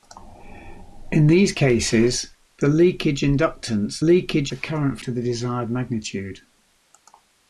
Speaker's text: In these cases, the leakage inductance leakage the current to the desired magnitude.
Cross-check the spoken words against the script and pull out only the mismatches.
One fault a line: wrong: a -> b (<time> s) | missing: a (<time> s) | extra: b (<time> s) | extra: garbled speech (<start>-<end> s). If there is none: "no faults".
no faults